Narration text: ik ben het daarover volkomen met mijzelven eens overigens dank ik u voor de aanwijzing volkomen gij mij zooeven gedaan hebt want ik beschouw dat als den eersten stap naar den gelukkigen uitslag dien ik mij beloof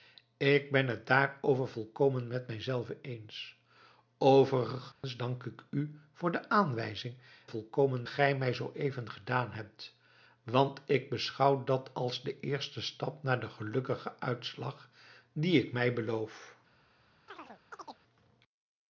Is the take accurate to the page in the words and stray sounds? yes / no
no